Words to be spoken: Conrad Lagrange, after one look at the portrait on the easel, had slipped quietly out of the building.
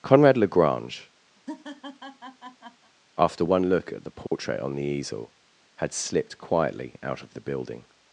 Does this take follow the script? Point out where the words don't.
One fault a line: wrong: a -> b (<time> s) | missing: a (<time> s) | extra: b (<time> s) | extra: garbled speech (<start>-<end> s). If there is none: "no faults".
no faults